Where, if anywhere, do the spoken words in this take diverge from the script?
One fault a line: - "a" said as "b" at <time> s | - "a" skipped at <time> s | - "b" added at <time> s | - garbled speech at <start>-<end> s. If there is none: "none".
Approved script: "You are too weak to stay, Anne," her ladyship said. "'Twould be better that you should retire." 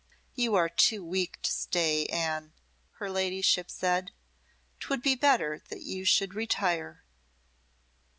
none